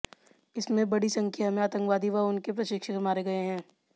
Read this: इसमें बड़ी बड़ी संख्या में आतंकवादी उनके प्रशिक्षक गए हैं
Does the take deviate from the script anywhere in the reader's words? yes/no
yes